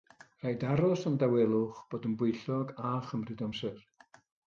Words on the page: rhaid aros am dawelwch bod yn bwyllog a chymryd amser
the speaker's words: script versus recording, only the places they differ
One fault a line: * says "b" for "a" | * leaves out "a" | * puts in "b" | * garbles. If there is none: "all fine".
all fine